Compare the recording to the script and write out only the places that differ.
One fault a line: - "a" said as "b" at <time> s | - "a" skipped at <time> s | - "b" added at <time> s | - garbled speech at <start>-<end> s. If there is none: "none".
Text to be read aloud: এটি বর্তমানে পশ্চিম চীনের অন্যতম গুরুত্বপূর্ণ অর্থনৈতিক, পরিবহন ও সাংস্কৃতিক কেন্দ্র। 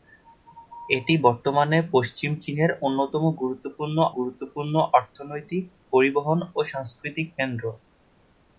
- "গুরুত্বপূর্ণ" added at 4.2 s